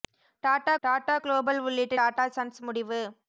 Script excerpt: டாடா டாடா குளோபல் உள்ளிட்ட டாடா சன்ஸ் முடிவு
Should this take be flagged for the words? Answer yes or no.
no